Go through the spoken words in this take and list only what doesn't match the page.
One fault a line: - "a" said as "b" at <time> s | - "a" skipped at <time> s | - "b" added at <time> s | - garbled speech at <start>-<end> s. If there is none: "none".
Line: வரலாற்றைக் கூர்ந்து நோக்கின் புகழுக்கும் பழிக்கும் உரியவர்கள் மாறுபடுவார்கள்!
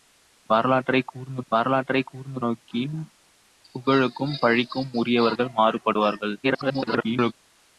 - "வரலாற்றைக் கூர்ந்து" added at 1.5 s
- garbled speech at 6.4-7.3 s